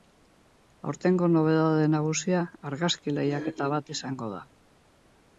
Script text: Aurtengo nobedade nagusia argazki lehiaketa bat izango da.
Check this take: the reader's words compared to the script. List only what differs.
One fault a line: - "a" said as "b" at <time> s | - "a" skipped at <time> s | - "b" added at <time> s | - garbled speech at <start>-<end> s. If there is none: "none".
none